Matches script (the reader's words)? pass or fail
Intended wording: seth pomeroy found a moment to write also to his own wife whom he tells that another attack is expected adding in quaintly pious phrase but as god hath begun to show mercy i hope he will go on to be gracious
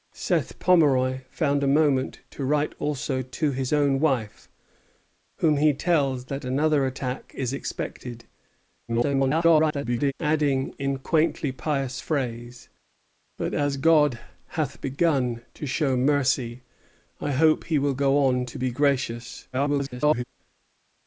fail